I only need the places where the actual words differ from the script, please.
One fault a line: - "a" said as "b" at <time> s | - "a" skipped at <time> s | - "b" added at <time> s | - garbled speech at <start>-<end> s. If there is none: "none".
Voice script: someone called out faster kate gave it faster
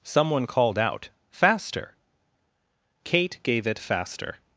none